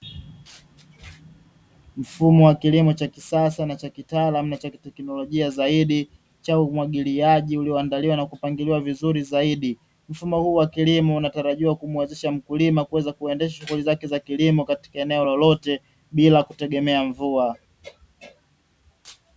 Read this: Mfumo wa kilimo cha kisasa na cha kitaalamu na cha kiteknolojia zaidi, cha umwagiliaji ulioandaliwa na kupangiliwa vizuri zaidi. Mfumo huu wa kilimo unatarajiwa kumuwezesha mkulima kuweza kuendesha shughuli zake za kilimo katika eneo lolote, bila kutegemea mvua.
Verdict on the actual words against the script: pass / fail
pass